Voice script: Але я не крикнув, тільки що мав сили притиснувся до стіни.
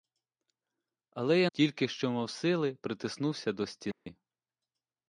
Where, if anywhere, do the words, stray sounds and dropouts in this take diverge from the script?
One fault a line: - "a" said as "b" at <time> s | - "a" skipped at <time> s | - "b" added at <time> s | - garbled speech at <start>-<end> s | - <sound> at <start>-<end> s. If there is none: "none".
- "не крикнув" skipped at 1.5 s
- dropout at 3.9-4.1 s